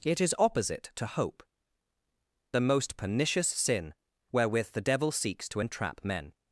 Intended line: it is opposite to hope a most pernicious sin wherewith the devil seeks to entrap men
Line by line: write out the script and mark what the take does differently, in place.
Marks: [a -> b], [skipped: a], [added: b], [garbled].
it is opposite to hope a most pernicious sin wherewith the devil seeks to entrap men